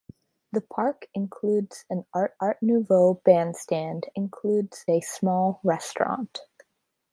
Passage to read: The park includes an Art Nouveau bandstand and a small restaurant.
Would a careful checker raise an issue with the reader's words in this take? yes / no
yes